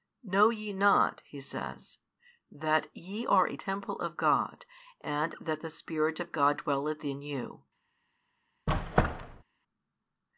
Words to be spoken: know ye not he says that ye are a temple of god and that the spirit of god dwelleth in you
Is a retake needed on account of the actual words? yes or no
no